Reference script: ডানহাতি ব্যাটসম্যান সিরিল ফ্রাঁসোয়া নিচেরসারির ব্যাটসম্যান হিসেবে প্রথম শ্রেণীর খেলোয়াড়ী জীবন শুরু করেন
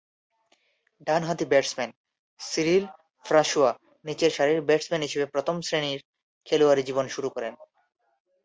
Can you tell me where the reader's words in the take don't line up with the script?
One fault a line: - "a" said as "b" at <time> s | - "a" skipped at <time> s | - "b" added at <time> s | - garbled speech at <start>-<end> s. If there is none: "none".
none